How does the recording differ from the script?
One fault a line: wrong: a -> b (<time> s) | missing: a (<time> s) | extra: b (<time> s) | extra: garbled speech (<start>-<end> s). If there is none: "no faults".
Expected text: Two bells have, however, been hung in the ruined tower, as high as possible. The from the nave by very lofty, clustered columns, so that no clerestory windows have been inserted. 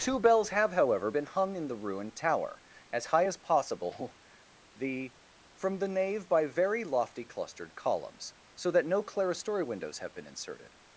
no faults